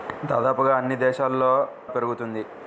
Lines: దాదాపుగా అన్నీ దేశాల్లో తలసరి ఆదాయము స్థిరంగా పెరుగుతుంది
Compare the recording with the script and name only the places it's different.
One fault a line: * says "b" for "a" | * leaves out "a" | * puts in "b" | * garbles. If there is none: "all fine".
* leaves out "తలసరి ఆదాయము స్థిరంగా"